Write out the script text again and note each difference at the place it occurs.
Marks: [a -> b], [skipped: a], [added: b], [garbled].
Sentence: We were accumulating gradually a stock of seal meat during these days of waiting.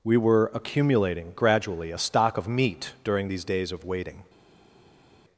We were accumulating gradually a stock of [skipped: seal] meat during these days of waiting.